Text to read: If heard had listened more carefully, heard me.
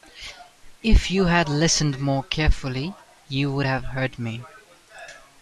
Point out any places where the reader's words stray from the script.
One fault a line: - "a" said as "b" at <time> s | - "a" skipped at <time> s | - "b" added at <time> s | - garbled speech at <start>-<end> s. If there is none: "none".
- "heard" said as "you" at 1.1 s
- "you would have" added at 3.3 s